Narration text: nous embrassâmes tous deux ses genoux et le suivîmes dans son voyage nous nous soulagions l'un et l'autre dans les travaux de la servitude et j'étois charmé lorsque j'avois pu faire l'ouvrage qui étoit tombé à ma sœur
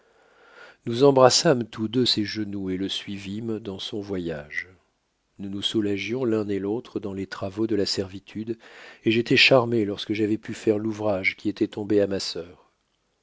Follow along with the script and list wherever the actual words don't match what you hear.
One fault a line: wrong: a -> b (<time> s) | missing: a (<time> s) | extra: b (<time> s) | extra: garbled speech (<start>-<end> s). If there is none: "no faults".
no faults